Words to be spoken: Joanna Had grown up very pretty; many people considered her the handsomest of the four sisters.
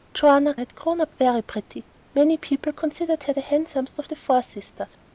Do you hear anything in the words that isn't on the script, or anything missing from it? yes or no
no